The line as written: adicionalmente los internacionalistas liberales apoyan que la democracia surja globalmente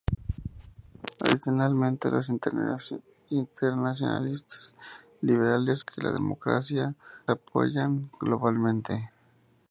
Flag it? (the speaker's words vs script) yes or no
yes